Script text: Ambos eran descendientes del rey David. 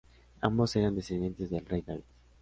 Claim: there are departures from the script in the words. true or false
false